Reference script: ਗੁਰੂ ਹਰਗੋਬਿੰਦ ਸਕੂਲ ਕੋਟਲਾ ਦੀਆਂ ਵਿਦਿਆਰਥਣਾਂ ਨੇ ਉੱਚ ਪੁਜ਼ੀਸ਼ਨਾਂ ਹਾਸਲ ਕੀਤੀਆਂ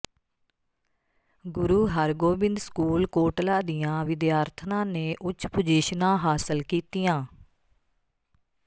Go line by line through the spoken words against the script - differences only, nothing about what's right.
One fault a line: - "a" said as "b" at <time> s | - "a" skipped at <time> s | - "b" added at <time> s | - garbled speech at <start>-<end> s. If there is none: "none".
none